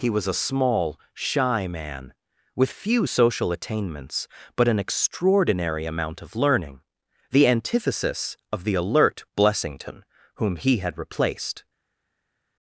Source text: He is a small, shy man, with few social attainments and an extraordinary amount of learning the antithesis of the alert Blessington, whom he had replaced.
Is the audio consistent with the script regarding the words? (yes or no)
no